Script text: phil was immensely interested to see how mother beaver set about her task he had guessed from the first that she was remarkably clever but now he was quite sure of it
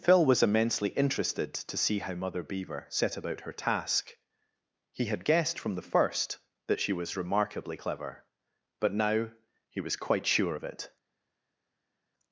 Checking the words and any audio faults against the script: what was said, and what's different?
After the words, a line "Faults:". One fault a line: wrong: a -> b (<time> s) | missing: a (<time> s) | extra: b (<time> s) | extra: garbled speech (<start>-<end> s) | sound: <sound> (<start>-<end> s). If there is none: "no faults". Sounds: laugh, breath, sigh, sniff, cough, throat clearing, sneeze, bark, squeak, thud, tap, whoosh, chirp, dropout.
phil was immensely interested to see how mother beaver set about her task he had guessed from the first that she was remarkably clever but now he was quite sure of it
Faults:
no faults